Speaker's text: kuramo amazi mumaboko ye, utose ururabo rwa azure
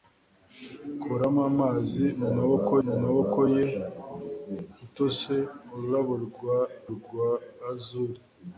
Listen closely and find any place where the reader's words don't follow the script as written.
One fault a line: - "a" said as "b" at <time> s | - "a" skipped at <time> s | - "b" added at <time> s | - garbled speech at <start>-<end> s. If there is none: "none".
- "mumaboko" added at 2.8 s
- "rwa" added at 7.0 s